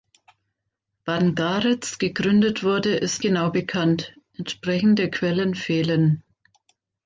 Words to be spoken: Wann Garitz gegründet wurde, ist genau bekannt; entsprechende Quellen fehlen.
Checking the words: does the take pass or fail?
pass